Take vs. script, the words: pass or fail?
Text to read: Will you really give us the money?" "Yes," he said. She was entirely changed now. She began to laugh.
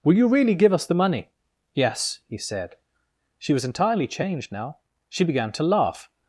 pass